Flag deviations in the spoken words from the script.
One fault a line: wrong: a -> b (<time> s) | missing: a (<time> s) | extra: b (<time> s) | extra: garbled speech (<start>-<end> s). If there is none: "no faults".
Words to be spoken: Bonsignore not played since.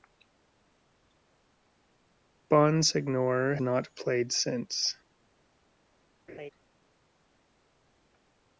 no faults